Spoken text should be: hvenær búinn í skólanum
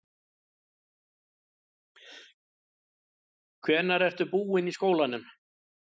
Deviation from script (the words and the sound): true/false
true